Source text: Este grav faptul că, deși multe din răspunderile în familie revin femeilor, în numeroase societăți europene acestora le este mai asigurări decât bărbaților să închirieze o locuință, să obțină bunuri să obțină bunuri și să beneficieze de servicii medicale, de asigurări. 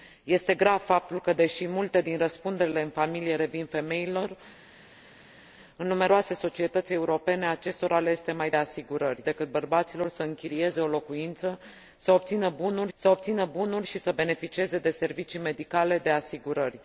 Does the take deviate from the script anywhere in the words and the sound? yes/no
no